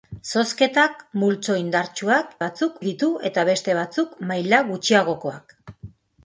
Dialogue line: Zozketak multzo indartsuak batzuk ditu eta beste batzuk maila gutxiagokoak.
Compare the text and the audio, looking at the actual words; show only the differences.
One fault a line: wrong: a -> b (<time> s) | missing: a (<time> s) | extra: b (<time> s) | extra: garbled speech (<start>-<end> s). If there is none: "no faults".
no faults